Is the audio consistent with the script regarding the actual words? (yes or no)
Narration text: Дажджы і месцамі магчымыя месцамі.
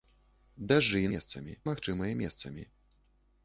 yes